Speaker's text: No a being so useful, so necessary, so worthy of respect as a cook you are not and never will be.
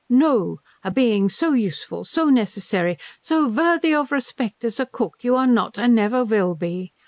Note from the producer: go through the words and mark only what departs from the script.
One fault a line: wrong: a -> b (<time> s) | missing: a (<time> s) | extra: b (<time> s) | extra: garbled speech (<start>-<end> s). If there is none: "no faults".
no faults